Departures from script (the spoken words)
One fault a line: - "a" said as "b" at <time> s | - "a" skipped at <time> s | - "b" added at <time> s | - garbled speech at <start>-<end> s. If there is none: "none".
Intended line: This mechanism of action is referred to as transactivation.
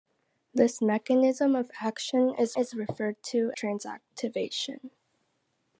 - "is" added at 2.5 s
- "as" skipped at 3.5 s